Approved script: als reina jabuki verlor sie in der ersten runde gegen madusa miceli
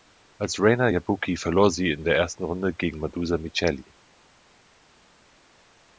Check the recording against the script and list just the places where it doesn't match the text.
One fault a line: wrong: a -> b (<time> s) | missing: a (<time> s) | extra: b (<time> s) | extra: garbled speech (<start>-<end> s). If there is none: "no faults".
no faults